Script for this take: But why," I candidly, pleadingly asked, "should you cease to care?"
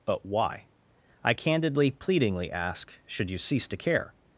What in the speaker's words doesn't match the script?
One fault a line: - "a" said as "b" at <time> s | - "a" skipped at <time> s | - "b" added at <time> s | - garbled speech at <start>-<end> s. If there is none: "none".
- "asked" said as "ask" at 2.5 s